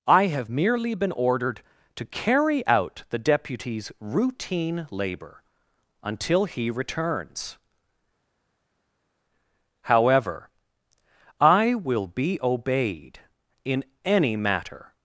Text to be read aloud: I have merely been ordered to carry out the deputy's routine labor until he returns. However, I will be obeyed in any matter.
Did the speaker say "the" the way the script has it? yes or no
yes